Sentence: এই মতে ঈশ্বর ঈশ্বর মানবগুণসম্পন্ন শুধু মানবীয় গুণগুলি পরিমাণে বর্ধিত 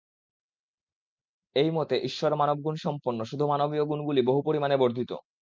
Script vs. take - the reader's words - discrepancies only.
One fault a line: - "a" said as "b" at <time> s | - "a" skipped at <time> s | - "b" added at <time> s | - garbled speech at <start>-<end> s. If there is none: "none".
- "ঈশ্বর" skipped at 2.3 s
- "বহু" added at 4.2 s